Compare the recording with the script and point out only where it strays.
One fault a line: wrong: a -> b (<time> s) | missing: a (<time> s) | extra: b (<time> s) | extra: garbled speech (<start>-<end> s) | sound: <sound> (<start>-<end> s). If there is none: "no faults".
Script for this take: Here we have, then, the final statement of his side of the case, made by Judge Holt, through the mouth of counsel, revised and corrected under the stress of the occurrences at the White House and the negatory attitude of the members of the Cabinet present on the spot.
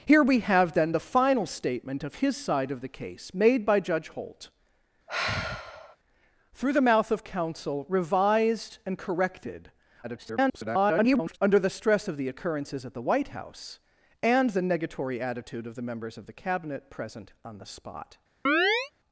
sound: sigh (5.1-6.0 s)
extra: garbled speech (10.0-11.4 s)
sound: chirp (18.5-18.9 s)